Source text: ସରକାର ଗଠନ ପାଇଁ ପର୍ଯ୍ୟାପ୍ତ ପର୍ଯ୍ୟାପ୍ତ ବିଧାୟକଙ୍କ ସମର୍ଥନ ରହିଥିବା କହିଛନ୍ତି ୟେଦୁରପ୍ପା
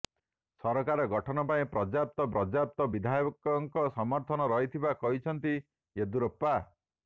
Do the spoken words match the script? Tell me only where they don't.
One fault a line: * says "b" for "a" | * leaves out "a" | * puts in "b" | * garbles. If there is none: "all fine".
all fine